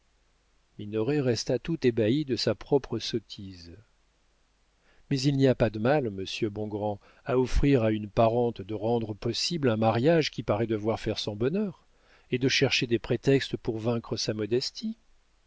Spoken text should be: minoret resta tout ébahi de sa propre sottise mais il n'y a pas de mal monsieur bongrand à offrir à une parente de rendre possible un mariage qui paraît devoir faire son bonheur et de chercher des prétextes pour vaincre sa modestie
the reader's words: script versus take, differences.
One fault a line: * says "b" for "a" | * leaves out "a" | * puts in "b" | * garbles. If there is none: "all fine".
all fine